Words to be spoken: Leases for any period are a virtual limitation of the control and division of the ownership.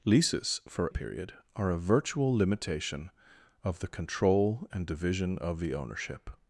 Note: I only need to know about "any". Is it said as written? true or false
false